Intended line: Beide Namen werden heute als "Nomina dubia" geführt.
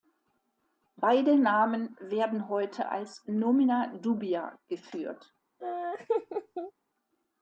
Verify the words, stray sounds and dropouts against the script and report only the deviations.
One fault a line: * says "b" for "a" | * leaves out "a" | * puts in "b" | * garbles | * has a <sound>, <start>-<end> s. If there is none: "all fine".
* has a laugh, 5.6-6.7 s